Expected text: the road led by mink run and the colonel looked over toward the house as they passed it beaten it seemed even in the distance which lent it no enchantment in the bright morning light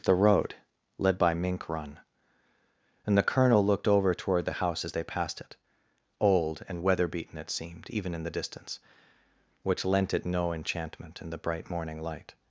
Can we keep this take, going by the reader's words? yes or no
no